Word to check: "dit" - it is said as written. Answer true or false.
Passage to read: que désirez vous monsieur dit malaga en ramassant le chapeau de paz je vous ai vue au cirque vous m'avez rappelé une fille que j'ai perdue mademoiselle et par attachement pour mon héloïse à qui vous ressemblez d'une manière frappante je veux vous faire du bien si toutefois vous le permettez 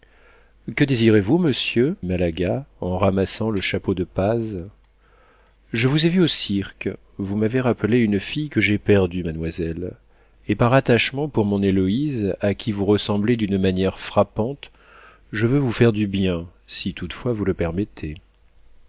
false